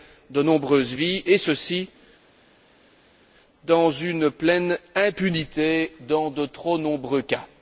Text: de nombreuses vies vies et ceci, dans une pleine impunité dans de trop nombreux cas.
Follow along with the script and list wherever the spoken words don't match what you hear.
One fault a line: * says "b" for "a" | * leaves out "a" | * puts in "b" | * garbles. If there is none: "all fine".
* leaves out "vies"